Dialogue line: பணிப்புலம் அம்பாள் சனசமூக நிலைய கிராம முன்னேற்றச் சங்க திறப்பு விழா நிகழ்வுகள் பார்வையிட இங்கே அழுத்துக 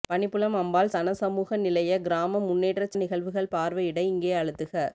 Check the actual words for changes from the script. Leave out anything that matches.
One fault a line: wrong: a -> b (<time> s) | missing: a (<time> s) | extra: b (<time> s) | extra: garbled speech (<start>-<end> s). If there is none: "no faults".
missing: சங்க திறப்பு விழா (3.0 s)